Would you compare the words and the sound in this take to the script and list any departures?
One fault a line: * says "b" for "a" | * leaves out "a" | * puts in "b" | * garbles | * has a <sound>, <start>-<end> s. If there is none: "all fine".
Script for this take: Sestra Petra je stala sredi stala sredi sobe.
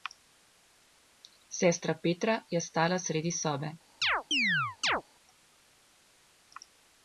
* leaves out "stala sredi"
* has a chirp, 4.0-5.0 s